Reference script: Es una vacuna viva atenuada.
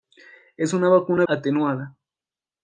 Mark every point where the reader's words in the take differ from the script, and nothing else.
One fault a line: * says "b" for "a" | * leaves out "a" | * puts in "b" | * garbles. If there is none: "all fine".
* leaves out "viva"